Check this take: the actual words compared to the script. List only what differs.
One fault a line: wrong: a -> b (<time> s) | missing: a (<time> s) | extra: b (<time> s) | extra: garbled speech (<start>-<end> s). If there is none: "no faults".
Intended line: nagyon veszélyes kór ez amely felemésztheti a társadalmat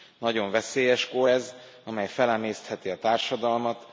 no faults